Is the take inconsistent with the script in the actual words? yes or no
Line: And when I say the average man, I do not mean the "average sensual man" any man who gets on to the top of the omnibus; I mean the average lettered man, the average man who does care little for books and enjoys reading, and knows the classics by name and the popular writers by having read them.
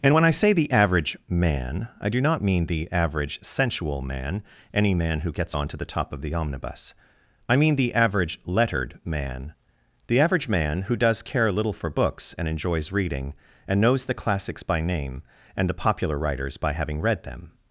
no